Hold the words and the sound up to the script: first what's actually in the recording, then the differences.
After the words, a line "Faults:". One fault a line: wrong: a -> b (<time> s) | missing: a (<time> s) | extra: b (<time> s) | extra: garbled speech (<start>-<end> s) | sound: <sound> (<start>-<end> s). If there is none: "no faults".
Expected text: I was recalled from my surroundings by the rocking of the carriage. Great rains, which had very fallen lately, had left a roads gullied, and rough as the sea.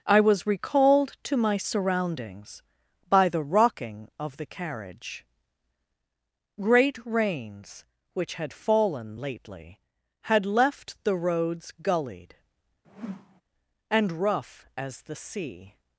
I was recalled to my surroundings by the rocking of the carriage. Great rains, which had fallen lately, had left the roads gullied, and rough as the sea.
Faults:
wrong: from -> to (1.2 s)
missing: very (8.5 s)
wrong: a -> the (11.0 s)
sound: whoosh (12.8-13.4 s)